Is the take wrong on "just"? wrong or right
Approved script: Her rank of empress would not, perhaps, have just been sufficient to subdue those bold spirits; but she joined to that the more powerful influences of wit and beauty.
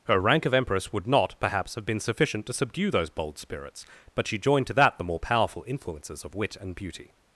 wrong